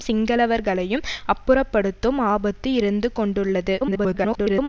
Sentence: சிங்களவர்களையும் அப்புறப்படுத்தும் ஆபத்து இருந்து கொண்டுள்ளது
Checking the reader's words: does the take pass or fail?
fail